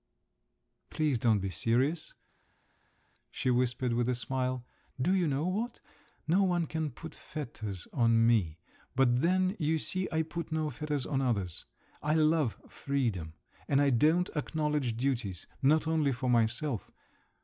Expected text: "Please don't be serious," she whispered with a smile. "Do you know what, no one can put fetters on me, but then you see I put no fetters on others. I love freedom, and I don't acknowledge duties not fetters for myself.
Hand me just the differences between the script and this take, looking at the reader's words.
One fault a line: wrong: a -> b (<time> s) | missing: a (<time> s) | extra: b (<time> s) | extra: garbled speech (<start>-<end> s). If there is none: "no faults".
wrong: fetters -> only (15.9 s)